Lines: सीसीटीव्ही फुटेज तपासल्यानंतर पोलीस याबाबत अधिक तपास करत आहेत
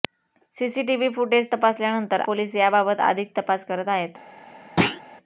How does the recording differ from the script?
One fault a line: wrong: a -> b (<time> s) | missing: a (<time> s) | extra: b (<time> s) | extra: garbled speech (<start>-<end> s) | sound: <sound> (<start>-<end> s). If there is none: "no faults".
sound: thud (4.8-5.0 s)